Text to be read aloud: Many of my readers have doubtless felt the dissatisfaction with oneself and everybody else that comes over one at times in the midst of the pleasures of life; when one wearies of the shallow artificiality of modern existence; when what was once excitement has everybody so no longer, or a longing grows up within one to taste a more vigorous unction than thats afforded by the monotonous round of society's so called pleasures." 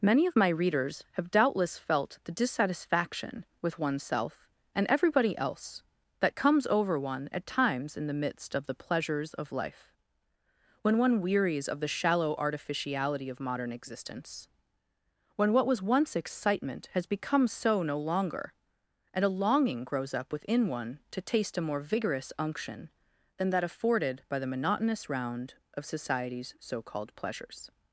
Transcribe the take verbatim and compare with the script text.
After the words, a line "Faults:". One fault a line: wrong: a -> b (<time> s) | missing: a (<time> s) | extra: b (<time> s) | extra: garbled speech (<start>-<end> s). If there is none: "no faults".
Many of my readers have doubtless felt the dissatisfaction with oneself and everybody else that comes over one at times in the midst of the pleasures of life; when one wearies of the shallow artificiality of modern existence; when what was once excitement has become so no longer, and a longing grows up within one to taste a more vigorous unction than that afforded by the monotonous round of society's so called pleasures."
Faults:
wrong: everybody -> become (17.1 s)
wrong: or -> and (19.1 s)
wrong: thats -> that (23.5 s)